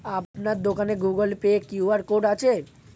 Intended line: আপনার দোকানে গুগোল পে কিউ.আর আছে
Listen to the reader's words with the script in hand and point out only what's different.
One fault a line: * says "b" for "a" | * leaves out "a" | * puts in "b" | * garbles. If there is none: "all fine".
* puts in "কোড"